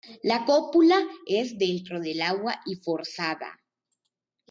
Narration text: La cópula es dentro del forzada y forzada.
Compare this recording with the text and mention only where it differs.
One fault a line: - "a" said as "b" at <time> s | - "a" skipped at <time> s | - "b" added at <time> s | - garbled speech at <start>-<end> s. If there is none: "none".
- "forzada" said as "agua" at 2.2 s